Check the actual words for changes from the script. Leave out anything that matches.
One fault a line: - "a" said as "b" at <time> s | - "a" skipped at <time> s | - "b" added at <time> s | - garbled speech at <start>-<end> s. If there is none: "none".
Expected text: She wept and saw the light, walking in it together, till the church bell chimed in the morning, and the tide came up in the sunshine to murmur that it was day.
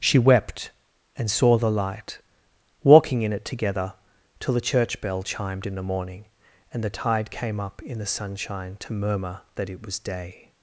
none